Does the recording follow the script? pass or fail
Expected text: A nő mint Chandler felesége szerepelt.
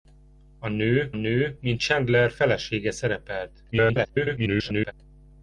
fail